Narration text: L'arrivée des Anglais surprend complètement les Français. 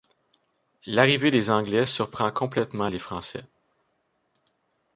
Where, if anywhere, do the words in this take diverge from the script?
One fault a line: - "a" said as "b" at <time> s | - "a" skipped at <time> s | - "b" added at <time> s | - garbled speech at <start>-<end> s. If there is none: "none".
none